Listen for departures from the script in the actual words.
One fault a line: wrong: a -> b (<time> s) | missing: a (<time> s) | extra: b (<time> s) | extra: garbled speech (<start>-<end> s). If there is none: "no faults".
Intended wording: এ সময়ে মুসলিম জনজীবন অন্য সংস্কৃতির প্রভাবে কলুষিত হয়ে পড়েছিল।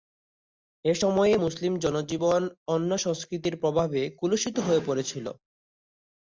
no faults